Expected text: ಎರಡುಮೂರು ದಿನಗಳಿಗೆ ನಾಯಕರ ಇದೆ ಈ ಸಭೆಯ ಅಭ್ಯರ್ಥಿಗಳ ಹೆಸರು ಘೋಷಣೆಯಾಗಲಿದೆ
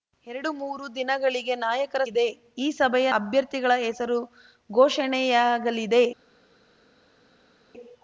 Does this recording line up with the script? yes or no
yes